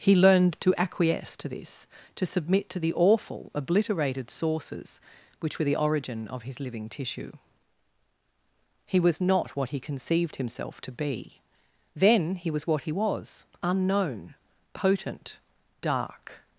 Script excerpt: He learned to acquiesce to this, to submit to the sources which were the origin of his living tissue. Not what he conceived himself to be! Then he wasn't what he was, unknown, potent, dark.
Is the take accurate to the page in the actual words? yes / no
no